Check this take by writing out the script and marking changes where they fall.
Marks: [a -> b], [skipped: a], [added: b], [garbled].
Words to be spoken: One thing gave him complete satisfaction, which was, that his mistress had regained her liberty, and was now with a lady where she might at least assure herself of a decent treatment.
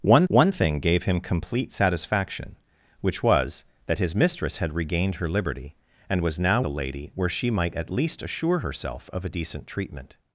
One [added: one] thing gave him complete satisfaction, which was, that his mistress had regained her liberty, and was now [skipped: with] a lady where she might at least assure herself of a decent treatment.